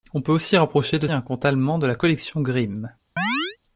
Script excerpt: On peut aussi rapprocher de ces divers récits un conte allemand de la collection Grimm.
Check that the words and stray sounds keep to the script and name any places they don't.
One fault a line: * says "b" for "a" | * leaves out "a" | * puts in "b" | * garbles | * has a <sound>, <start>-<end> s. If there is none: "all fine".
* leaves out "ces divers récits"
* has a chirp, 3.2-3.6 s